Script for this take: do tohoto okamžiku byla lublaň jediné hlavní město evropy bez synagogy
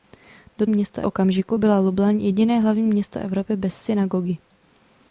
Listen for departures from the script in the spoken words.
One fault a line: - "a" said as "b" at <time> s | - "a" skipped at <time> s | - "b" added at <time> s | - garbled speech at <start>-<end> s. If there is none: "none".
- "tohoto" said as "město" at 0.7 s